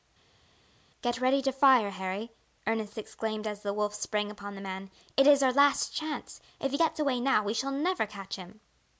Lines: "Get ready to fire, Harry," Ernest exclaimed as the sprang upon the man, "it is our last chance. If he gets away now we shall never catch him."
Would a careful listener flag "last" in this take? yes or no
no